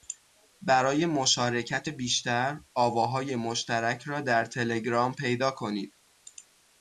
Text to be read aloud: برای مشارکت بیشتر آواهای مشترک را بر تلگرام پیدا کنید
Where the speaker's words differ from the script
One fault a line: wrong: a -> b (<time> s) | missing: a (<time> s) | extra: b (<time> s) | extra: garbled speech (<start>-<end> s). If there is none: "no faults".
wrong: بر -> در (4.2 s)